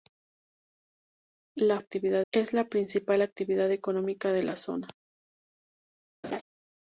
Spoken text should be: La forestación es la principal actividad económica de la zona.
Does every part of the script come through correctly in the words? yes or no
no